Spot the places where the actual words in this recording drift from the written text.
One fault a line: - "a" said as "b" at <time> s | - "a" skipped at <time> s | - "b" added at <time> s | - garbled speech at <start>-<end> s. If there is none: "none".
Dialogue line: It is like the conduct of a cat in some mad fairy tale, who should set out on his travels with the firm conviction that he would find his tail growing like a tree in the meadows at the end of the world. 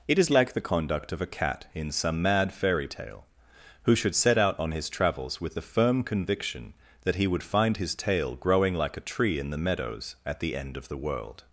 none